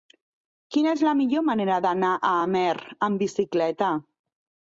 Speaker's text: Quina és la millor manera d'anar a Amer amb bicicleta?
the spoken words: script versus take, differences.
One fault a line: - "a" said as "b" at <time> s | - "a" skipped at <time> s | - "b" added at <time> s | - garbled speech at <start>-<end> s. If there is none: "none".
none